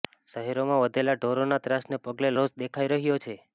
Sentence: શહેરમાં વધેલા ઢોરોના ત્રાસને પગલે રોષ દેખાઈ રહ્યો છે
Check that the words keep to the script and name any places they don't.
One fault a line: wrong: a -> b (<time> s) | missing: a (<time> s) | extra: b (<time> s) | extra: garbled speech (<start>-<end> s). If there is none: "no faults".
no faults